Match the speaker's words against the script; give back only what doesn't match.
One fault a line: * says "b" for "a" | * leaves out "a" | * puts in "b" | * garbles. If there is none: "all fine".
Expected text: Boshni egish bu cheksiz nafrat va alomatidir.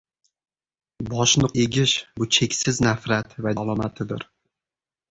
all fine